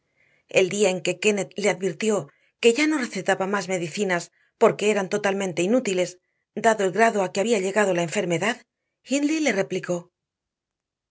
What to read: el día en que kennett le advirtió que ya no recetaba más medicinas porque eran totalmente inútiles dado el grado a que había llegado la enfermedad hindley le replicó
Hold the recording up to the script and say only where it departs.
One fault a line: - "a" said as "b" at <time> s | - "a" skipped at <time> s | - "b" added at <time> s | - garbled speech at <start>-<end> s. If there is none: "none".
none